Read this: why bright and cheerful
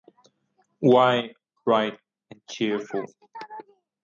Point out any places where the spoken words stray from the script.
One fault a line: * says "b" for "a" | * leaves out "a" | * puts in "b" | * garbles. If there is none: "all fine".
all fine